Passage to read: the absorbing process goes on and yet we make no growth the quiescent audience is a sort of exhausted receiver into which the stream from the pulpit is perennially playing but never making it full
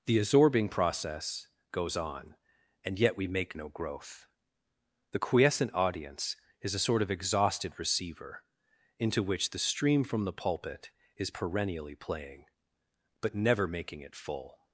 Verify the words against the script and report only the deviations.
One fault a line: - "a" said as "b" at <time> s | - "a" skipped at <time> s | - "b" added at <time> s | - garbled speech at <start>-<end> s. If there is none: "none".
none